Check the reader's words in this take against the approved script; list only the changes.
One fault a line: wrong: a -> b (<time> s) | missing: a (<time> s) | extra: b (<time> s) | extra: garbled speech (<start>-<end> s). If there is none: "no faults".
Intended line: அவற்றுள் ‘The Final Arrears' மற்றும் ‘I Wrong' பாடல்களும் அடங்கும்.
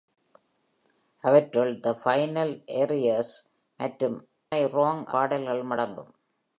no faults